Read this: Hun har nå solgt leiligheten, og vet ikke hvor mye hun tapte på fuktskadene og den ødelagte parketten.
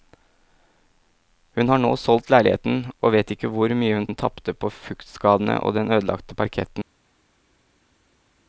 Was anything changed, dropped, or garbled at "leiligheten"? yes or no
no